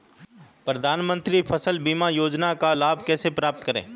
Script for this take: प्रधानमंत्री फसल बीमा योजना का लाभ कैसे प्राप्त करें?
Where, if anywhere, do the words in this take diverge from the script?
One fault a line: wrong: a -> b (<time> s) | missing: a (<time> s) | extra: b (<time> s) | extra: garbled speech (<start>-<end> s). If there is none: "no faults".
no faults